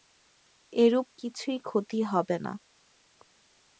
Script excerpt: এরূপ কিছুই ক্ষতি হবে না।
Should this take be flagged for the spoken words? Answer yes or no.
no